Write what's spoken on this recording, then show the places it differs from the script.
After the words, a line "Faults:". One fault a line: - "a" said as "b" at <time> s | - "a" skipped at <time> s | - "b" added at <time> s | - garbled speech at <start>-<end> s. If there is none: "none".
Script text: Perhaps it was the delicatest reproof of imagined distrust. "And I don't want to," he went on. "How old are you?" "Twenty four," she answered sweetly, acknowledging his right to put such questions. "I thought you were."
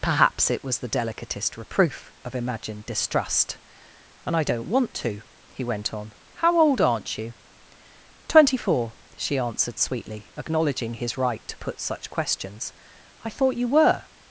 Perhaps it was the delicatest reproof of imagined distrust. "And I don't want to," he went on. "How old aren't you?" "Twenty four," she answered sweetly, acknowledging his right to put such questions. "I thought you were."
Faults:
- "are" said as "aren't" at 6.8 s